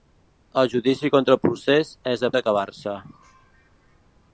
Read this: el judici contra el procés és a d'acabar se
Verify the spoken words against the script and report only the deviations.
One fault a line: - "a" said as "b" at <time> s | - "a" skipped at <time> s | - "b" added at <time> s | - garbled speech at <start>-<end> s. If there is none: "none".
none